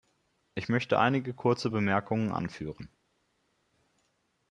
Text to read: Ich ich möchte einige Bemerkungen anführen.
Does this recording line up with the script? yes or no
no